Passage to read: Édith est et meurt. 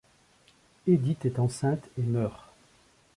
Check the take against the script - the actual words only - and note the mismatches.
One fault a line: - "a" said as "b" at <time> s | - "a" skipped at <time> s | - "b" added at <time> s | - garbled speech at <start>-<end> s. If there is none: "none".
- "enceinte" added at 1.4 s